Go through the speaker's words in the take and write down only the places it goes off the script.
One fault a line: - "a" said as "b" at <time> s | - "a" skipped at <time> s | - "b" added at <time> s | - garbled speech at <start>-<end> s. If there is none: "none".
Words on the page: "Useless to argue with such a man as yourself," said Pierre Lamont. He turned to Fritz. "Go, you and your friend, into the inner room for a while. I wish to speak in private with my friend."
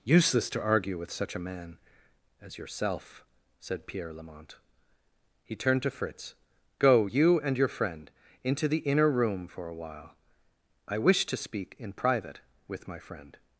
none